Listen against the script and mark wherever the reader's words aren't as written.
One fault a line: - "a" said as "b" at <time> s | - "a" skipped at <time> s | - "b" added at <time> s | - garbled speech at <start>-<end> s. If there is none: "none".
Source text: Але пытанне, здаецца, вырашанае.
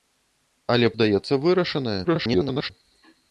- "пытанне" skipped at 0.9 s
- garbled speech at 2.0-2.7 s